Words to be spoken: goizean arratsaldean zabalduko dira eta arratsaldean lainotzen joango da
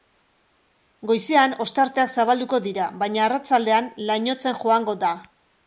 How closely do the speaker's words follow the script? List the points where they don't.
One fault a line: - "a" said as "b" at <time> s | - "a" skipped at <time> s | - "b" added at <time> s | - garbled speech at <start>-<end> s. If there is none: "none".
- "arratsaldean" said as "ostarteak" at 1.6 s
- "eta" said as "baina" at 3.0 s